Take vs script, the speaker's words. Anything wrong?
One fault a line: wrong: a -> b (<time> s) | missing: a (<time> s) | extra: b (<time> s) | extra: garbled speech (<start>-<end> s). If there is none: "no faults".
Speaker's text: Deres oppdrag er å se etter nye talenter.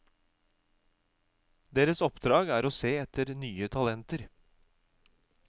no faults